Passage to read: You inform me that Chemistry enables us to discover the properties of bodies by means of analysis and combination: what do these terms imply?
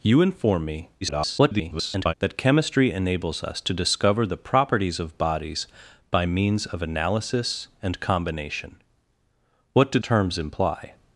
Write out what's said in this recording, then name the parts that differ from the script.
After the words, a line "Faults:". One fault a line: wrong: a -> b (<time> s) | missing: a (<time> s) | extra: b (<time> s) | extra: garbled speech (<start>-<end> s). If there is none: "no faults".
You inform me [garbled] that Chemistry enables us to discover the properties of bodies by means of analysis and combination: what do terms imply?
Faults:
extra: garbled speech (1.0-2.1 s)
missing: these (10.0 s)